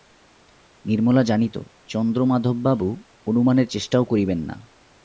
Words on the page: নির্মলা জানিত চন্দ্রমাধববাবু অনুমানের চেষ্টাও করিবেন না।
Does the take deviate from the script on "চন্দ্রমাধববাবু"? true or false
false